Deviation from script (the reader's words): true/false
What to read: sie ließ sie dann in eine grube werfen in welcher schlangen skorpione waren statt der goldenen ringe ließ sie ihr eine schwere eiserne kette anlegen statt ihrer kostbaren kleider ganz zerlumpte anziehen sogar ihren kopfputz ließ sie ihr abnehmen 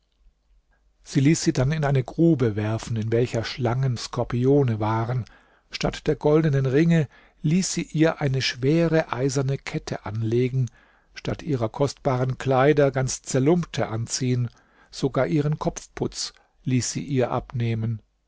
false